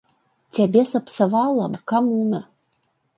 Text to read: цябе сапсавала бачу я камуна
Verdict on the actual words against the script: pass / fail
fail